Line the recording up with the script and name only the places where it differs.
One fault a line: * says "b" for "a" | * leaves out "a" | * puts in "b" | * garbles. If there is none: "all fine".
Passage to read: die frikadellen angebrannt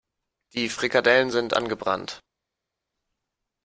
* puts in "sind"